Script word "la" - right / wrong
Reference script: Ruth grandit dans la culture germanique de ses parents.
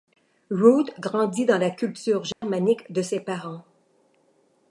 right